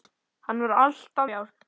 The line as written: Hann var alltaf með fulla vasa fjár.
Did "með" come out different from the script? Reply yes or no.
yes